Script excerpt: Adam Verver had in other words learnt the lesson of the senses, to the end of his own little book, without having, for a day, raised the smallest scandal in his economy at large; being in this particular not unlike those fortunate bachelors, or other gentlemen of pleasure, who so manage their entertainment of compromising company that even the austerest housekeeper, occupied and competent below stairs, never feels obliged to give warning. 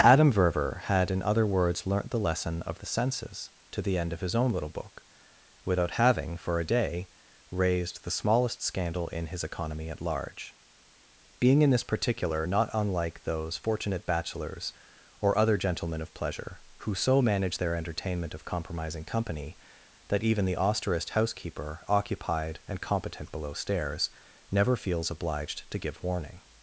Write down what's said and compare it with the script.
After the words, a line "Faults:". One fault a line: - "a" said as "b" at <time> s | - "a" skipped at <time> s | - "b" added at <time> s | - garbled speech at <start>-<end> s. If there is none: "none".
Adam Verver had in other words learnt the lesson of the senses, to the end of his own little book, without having, for a day, raised the smallest scandal in his economy at large; being in this particular not unlike those fortunate bachelors, or other gentlemen of pleasure, who so manage their entertainment of compromising company that even the austerest housekeeper, occupied and competent below stairs, never feels obliged to give warning.
Faults:
none